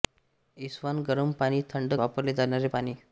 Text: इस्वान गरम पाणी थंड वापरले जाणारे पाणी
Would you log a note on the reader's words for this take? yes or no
no